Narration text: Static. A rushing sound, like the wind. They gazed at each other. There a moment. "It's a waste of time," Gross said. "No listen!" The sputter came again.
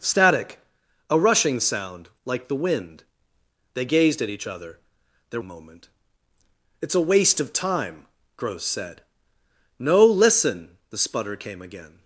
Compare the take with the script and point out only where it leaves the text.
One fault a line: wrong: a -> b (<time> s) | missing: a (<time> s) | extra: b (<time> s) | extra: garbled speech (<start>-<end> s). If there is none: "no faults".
no faults